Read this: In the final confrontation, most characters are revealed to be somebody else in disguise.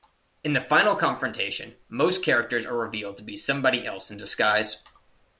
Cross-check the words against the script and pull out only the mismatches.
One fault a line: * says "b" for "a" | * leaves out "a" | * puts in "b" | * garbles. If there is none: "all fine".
all fine